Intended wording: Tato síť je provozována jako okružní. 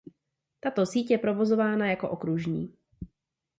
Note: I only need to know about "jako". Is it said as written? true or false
true